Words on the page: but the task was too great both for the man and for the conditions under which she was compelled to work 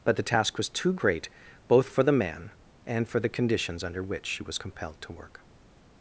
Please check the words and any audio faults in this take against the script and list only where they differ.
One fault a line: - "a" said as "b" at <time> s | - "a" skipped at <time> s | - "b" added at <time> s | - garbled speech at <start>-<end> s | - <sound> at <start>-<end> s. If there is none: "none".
none